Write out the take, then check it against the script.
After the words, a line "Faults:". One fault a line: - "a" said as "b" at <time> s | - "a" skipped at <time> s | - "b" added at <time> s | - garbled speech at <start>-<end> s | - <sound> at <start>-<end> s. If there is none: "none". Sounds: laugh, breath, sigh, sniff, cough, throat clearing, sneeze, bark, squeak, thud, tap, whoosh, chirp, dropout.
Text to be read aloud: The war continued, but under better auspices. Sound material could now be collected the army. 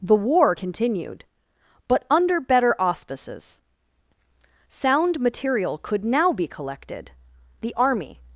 The war continued, but under better auspices. Sound material could now be collected the army.
Faults:
none